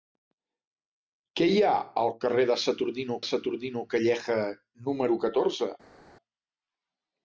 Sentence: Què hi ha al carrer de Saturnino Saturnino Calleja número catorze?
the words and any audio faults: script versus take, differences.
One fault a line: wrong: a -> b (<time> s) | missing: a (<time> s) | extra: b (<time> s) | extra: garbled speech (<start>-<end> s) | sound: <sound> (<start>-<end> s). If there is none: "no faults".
no faults